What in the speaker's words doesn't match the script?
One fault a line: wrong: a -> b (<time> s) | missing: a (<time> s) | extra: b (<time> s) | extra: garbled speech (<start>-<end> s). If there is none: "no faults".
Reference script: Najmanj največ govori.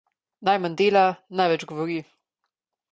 extra: dela (0.8 s)